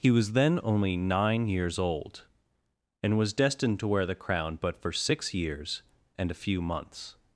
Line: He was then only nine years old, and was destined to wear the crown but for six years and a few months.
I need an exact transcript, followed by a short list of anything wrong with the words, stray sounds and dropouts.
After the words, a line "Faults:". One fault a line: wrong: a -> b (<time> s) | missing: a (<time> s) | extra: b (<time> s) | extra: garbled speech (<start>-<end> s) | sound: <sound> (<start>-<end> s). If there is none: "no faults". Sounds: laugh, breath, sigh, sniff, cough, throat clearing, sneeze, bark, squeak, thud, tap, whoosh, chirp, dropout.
He was then only nine years old, and was destined to wear the crown but for six years and a few months.
Faults:
no faults